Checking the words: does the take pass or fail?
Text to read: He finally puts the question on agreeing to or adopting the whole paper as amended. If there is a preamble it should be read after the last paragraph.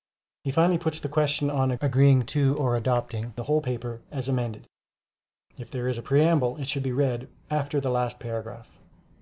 pass